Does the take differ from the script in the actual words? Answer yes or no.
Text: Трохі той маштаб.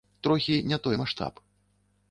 yes